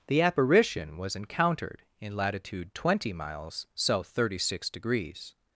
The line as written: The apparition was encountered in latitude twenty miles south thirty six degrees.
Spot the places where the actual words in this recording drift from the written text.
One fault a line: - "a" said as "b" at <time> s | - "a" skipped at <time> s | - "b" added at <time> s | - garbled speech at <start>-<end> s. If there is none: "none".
none